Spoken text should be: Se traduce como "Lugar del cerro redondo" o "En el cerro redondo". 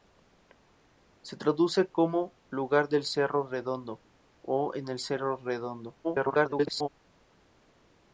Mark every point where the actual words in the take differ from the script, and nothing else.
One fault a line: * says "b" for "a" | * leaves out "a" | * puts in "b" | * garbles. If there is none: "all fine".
* garbles